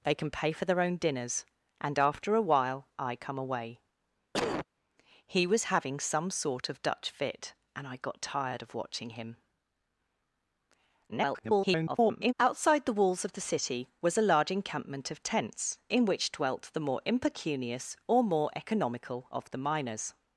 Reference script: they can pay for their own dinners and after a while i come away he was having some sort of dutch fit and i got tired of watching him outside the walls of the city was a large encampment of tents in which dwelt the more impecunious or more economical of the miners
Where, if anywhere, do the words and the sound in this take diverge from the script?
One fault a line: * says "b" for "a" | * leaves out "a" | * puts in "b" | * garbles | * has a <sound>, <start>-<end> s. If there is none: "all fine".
* has a cough, 4.3-4.7 s
* garbles